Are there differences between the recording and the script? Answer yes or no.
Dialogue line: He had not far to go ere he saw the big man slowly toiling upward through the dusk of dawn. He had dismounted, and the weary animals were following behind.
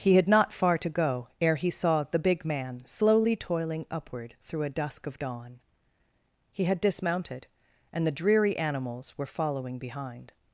yes